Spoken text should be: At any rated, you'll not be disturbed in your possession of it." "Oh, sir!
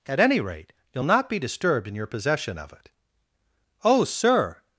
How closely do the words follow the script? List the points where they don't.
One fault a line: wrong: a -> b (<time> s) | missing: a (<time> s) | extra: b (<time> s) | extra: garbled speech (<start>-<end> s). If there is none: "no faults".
wrong: rated -> rate (0.4 s)